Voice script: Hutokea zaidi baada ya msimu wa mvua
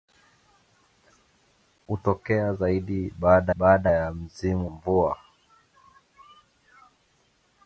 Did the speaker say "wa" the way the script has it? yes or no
no